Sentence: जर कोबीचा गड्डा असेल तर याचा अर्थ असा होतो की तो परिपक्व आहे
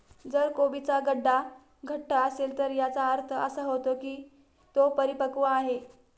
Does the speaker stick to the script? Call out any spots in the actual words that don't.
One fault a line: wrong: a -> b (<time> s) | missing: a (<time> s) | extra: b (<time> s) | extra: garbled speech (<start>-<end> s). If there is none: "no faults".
extra: घट्ट (1.9 s)